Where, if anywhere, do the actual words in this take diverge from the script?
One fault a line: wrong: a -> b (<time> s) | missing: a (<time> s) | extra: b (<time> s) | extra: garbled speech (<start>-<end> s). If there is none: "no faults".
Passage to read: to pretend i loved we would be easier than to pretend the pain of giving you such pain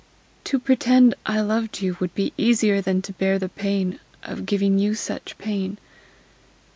wrong: we -> you (1.8 s)
wrong: pretend -> bear (3.1 s)